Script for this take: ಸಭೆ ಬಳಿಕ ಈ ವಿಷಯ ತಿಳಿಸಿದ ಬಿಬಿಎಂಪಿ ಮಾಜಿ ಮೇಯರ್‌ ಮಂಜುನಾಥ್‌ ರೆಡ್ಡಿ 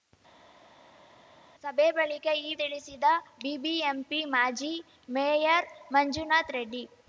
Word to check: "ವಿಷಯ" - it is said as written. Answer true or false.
false